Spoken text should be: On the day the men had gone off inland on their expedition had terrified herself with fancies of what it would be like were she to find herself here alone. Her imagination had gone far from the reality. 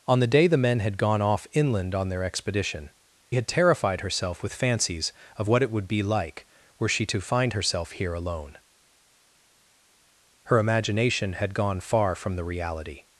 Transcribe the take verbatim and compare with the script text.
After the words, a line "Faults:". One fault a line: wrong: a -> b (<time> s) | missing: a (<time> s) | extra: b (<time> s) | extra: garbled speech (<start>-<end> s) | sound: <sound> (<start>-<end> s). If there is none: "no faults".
On the day the men had gone off inland on their expedition had terrified herself with fancies of what it would be like were she to find herself here alone. Her imagination had gone far from the reality.
Faults:
no faults